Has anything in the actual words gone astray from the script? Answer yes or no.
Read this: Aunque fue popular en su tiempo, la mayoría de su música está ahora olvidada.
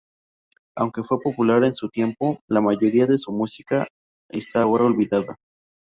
no